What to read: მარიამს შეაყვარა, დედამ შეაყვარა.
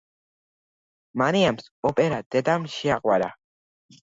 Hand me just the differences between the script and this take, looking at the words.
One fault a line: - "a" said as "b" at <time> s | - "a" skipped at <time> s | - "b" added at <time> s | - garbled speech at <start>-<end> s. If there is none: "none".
- "შეაყვარა" said as "ოპერა" at 1.9 s